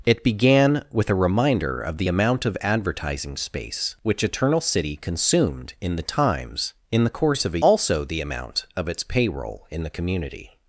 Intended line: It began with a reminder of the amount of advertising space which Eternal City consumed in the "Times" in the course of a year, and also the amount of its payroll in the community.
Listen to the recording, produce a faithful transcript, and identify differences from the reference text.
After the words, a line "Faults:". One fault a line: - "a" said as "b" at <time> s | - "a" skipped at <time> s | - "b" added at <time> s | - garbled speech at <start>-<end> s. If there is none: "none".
It began with a reminder of the amount of advertising space which Eternal City consumed in the "Times" in the course of a also the amount of its payroll in the community.
Faults:
- "year and" skipped at 7.6 s